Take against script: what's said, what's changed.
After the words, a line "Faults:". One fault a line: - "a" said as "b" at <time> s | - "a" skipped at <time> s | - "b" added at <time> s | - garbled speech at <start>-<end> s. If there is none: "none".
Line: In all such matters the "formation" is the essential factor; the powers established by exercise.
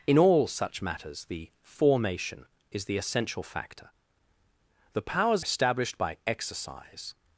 In all such matters the "formation" is the essential factor; the powers established by exercise.
Faults:
none